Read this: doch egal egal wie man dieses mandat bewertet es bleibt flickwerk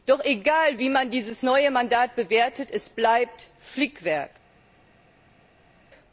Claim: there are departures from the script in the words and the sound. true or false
true